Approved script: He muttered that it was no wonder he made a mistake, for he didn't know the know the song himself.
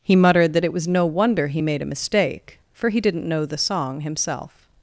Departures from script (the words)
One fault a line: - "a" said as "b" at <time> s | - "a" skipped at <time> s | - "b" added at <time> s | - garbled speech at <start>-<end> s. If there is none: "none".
- "know the" skipped at 3.6 s